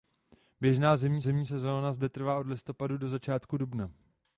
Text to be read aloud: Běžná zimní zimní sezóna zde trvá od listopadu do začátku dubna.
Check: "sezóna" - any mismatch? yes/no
no